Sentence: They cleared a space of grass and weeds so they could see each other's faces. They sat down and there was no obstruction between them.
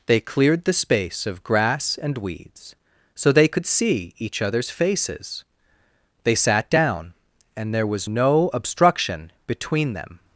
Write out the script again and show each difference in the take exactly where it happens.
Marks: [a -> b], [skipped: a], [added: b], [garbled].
They cleared [a -> the] space of grass and weeds so they could see each other's faces. They sat down and there was no obstruction between them.